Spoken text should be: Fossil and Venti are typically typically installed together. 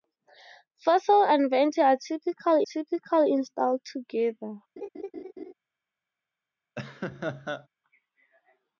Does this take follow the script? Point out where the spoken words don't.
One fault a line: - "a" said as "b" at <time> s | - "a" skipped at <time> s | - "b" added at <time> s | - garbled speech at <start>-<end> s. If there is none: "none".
none